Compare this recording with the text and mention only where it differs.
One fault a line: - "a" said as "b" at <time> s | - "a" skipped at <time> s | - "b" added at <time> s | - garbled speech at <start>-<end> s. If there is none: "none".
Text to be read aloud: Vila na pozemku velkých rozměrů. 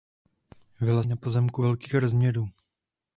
none